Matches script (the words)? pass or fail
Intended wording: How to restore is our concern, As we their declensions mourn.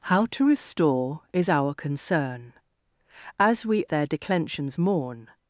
pass